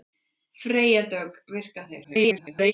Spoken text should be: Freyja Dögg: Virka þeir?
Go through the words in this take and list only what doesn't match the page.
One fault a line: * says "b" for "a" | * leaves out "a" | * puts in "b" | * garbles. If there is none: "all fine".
* garbles